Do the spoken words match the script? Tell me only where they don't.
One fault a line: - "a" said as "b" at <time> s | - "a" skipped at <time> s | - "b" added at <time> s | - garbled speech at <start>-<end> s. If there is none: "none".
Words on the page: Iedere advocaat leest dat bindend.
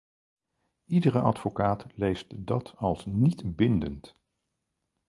- "als niet" added at 2.8 s